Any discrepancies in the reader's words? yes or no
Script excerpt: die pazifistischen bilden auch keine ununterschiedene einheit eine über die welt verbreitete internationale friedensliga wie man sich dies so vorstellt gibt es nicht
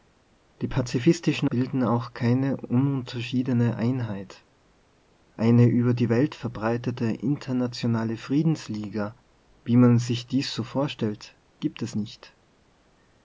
no